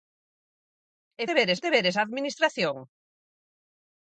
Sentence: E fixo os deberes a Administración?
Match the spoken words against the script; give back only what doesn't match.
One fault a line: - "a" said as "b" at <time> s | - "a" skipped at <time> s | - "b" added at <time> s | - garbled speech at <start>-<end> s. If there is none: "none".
- "fixo" said as "deberes" at 1.3 s